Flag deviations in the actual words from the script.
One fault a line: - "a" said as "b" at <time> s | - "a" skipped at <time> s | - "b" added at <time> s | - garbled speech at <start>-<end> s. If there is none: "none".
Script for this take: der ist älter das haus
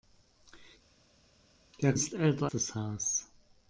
none